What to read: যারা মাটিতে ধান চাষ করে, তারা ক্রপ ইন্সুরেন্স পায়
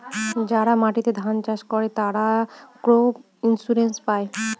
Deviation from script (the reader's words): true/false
false